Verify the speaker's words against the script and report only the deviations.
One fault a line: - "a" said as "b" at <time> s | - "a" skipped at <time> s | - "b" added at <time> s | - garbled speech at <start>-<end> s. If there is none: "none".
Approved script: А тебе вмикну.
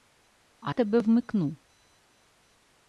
none